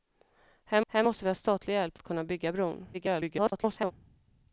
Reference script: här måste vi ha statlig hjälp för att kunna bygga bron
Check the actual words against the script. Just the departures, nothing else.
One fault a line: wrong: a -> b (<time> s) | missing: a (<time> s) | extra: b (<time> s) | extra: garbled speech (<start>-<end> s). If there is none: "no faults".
extra: här (0.9 s)
missing: för (2.0 s)
extra: garbled speech (2.9-3.9 s)